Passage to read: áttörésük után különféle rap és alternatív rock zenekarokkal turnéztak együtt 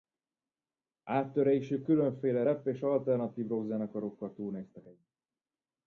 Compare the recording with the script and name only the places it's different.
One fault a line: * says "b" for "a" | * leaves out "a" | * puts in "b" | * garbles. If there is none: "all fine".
* leaves out "után"